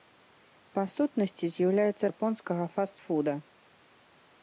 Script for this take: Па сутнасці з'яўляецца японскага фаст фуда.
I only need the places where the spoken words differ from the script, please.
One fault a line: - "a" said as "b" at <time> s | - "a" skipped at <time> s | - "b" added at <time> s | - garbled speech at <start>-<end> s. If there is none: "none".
none